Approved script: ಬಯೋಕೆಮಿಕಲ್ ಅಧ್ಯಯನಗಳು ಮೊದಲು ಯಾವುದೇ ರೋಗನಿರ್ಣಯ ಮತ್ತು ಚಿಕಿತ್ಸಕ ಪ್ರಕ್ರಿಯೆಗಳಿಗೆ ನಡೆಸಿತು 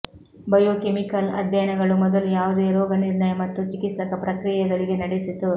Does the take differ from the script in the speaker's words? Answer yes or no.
no